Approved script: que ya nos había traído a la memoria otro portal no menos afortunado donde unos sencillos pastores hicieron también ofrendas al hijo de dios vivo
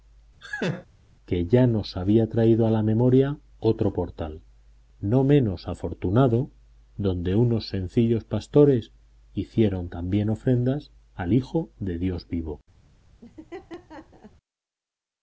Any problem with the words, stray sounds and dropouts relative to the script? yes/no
yes